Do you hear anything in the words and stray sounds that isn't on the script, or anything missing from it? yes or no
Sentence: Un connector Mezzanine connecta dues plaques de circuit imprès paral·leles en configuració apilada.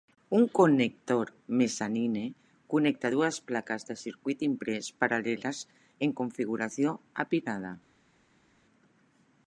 no